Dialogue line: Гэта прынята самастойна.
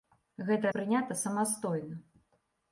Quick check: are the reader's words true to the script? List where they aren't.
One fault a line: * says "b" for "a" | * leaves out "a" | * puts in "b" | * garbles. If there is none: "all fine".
all fine